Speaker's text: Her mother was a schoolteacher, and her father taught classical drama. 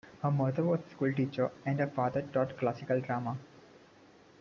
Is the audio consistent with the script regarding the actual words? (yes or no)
yes